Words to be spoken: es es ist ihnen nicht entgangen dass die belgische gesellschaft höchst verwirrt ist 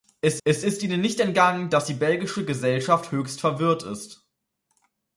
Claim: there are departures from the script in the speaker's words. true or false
false